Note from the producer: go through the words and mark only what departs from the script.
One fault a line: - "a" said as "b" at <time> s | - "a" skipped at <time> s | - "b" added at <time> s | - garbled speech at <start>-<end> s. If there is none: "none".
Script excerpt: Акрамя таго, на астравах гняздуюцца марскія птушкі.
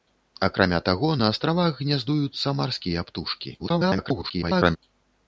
- garbled speech at 3.6-4.8 s